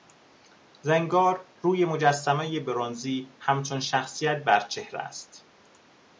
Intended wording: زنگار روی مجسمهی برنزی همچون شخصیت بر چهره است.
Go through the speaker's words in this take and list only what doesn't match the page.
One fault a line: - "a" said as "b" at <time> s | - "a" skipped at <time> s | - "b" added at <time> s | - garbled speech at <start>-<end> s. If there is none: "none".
none